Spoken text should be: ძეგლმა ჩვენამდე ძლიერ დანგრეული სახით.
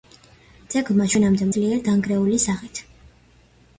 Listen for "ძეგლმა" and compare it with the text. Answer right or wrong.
right